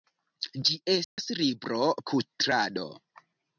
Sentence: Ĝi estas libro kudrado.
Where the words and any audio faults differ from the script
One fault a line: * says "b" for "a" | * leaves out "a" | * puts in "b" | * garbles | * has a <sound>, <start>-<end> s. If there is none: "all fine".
* has a dropout, 1.0-1.2 s